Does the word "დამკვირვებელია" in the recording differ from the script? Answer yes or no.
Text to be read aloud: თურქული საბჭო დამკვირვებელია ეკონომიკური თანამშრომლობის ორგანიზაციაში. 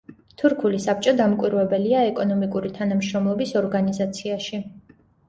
no